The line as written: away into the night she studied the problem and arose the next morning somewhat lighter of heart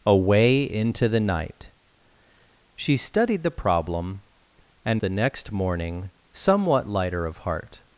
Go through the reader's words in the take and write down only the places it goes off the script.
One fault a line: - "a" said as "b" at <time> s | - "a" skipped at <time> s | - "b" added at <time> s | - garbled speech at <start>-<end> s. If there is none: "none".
- "arose" skipped at 5.0 s